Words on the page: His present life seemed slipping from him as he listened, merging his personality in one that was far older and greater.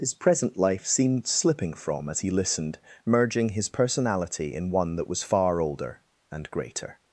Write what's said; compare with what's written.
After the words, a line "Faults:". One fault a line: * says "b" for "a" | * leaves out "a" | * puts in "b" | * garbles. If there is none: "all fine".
His present life seemed slipping from as he listened, merging his personality in one that was far older and greater.
Faults:
* leaves out "him"